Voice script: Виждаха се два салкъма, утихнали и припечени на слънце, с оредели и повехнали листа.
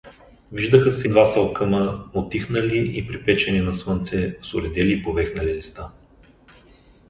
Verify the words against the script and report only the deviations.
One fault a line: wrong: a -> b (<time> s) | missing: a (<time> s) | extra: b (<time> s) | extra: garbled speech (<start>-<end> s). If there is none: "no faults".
no faults